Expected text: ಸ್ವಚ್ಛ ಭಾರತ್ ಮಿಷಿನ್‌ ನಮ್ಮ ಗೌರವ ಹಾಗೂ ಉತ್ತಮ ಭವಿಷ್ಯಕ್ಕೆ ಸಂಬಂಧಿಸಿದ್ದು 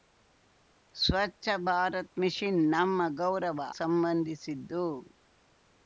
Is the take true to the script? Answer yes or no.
no